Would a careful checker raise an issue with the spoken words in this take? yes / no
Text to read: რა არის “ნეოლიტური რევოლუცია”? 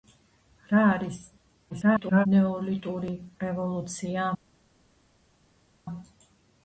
yes